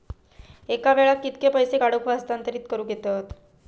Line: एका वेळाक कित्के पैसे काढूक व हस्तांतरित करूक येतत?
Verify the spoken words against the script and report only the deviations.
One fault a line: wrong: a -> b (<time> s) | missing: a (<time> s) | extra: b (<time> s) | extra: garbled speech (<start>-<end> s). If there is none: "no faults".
no faults